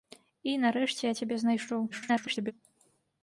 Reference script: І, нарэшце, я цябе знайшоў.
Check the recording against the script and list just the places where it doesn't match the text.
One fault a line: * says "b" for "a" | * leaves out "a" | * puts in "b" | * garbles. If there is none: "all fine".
* garbles